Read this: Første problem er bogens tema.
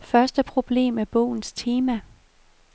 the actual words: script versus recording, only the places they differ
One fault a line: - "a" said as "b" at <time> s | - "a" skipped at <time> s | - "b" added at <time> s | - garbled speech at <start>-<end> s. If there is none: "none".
none